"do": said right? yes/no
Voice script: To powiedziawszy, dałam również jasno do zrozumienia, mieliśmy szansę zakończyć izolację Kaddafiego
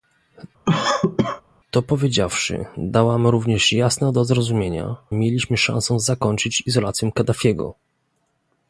yes